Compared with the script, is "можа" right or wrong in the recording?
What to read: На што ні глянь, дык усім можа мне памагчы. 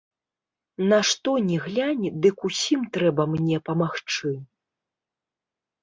wrong